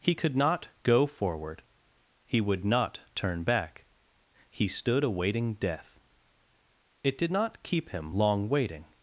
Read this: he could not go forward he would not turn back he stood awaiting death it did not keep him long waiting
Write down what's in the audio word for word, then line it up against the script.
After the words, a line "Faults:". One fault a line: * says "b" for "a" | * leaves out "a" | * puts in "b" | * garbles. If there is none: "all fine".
he could not go forward he would not turn back he stood awaiting death it did not keep him long waiting
Faults:
all fine